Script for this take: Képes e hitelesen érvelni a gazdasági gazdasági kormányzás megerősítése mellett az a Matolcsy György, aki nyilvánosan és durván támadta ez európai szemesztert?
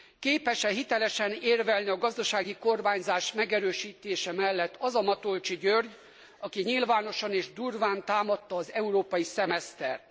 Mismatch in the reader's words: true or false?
true